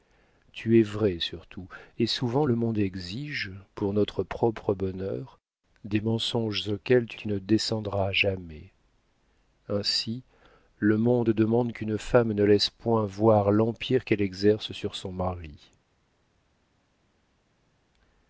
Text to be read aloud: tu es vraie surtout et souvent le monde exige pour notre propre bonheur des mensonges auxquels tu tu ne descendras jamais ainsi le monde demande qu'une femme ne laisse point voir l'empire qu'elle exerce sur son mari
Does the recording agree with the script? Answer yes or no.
yes